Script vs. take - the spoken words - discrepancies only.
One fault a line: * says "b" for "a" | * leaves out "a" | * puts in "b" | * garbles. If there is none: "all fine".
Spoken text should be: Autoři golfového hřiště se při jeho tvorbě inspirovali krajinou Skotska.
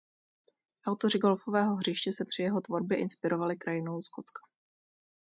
all fine